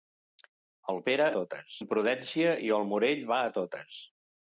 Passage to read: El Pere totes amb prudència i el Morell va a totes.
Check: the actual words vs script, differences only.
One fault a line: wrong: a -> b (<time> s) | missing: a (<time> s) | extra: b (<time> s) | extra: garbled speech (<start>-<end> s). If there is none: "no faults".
no faults